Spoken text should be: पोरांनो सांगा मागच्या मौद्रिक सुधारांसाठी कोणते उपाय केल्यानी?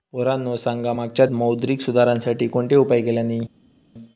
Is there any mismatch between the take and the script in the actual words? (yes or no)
no